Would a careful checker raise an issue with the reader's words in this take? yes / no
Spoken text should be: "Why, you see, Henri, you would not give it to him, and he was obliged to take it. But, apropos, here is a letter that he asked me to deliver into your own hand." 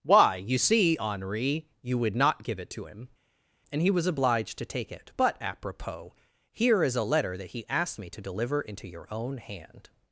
no